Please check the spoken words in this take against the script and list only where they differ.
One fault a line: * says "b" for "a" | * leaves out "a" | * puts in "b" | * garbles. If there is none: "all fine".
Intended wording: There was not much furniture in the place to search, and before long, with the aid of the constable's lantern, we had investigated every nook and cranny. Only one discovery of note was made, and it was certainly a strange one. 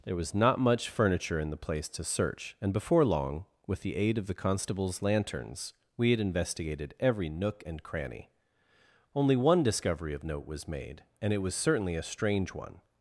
* says "lanterns" for "lantern"